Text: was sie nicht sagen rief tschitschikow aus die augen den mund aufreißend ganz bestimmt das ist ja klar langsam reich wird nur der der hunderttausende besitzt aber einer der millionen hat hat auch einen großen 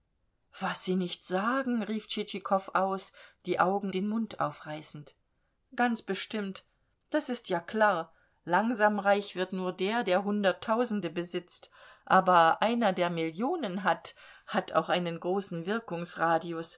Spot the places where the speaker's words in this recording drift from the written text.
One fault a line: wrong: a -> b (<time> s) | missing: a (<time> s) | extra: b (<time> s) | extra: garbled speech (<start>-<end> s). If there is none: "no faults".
no faults